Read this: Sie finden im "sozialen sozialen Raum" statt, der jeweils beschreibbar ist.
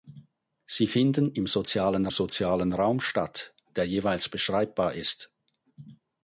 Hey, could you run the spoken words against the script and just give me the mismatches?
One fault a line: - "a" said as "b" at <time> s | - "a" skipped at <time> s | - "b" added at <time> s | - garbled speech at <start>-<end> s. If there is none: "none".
none